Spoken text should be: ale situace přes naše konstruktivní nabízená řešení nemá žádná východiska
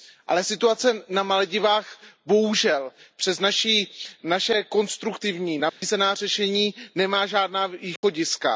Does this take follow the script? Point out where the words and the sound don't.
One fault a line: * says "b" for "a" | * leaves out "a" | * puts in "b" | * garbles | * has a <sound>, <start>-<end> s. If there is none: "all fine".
* puts in "na maledivách bohužel"
* has a dropout, 5.7-5.8 s
* has a dropout, 8.0-8.0 s